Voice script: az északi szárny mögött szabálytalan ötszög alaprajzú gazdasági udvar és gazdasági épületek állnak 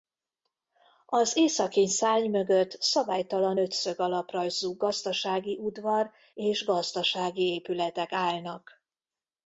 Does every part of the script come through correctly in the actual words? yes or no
yes